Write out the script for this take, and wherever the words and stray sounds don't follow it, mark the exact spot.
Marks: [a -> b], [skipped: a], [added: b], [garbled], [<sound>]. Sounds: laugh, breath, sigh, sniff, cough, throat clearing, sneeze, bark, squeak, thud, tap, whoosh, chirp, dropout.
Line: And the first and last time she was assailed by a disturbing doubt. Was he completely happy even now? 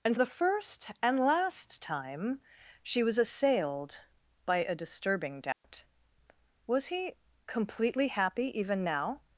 And the first and last time she was assailed by a disturbing doubt. [dropout] Was he completely happy even now?